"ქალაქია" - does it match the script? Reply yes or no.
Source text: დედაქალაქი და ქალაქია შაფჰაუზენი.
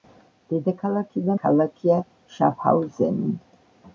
yes